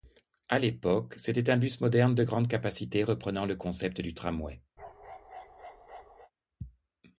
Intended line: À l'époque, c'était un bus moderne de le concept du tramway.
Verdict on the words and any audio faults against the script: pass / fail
fail